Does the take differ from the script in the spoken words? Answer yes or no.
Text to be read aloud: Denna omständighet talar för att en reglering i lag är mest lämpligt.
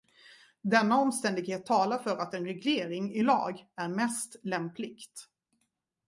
no